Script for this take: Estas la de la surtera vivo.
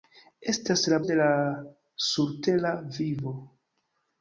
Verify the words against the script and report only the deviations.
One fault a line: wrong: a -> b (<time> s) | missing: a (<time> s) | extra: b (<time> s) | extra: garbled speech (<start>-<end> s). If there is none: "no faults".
no faults